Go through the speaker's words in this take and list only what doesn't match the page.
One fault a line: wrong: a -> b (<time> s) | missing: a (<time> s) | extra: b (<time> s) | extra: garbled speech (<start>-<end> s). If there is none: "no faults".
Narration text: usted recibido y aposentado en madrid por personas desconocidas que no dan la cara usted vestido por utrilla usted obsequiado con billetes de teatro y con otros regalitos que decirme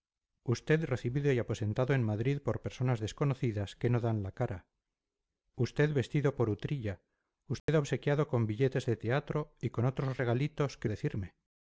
no faults